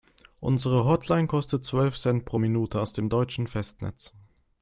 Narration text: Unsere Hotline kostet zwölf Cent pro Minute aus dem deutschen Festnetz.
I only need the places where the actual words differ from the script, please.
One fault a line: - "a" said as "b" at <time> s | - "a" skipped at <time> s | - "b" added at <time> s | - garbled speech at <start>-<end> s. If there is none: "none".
none